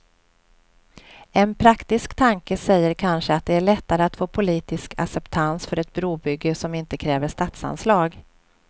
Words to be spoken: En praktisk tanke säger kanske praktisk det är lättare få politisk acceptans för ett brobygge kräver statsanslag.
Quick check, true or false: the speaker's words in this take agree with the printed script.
false